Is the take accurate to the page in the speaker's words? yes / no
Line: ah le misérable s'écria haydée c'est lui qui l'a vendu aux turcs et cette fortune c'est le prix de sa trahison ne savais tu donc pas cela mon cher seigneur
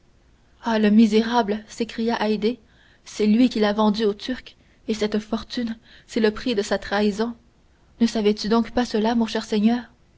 yes